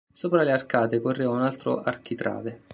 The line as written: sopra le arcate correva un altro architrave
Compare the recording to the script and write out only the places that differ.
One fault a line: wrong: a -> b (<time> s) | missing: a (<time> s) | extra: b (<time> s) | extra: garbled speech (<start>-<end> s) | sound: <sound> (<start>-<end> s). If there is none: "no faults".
no faults